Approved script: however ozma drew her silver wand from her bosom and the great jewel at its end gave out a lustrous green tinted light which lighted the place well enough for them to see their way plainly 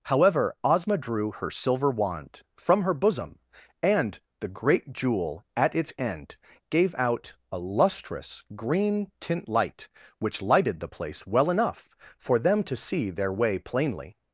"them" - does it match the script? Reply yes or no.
yes